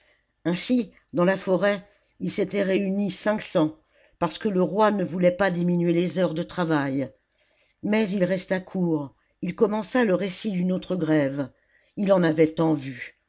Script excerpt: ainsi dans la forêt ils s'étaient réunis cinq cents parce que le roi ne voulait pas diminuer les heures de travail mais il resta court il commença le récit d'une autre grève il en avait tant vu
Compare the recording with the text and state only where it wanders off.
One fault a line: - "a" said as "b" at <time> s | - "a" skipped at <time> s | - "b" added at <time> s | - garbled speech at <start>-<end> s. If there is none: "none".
none